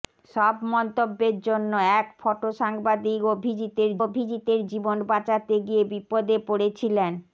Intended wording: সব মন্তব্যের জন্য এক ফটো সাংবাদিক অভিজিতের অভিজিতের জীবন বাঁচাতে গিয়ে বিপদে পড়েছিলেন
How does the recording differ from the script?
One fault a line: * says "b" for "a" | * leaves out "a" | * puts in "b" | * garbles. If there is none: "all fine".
all fine